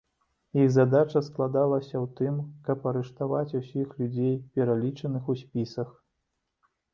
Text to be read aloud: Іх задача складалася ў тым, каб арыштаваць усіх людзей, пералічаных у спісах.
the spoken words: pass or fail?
pass